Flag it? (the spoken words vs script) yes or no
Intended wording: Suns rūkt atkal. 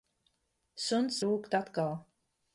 no